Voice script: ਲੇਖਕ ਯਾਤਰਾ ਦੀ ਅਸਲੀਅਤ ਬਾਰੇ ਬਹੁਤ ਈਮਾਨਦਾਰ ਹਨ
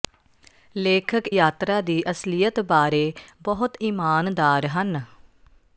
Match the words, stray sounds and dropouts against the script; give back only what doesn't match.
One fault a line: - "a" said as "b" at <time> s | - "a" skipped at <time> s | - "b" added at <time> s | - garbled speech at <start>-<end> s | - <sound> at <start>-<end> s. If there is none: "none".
none